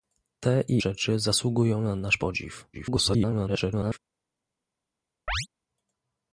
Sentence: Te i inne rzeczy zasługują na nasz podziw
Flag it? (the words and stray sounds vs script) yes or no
yes